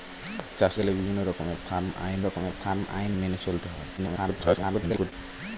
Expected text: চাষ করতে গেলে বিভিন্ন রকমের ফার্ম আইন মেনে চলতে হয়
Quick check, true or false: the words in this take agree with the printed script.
false